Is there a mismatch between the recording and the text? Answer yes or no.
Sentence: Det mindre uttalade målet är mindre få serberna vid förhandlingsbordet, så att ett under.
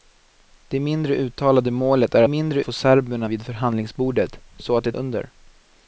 no